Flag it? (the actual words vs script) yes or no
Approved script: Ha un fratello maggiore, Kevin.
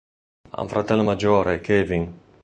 no